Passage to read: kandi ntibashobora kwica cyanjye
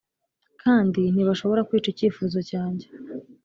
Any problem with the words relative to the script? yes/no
yes